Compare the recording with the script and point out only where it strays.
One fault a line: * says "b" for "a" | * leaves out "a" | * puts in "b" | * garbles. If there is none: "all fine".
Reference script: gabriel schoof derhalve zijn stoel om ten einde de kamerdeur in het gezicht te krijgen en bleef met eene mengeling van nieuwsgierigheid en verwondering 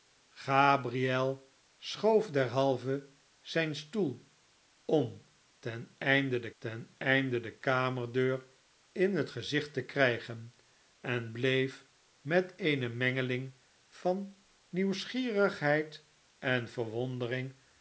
* puts in "ten einde de"